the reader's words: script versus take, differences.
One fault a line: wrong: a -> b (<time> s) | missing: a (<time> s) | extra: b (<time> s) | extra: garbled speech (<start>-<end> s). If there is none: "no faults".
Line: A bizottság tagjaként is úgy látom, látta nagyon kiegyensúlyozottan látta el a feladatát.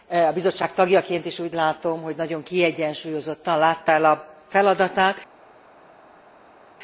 wrong: látta -> hogy (2.0 s)